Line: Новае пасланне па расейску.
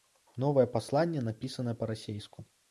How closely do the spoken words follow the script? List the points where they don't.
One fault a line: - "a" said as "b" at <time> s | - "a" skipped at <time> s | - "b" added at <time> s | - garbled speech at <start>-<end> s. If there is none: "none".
- "напісанае" added at 1.3 s